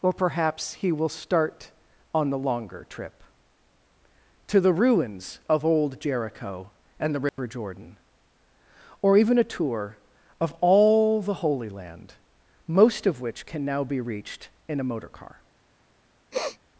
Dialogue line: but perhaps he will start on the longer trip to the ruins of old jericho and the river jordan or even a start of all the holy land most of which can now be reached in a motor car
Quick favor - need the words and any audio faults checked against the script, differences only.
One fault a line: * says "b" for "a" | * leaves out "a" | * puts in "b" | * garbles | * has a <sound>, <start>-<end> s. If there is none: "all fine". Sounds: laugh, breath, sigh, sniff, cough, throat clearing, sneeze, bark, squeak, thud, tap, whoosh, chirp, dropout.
* says "or" for "but"
* has a dropout, 7.3-7.4 s
* says "tour" for "start"
* has a sniff, 16.3-16.6 s